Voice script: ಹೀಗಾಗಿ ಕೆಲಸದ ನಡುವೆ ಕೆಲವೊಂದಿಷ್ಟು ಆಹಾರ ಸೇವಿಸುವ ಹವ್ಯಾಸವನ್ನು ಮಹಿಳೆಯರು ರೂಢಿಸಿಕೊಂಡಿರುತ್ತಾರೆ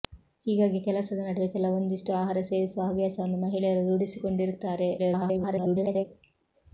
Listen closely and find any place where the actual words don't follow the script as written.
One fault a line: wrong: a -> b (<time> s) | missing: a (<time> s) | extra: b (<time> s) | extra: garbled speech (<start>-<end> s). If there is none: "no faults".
extra: garbled speech (5.0-6.1 s)